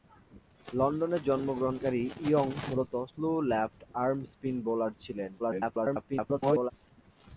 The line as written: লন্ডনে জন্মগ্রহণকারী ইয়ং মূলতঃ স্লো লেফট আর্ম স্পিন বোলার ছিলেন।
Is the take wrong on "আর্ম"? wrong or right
right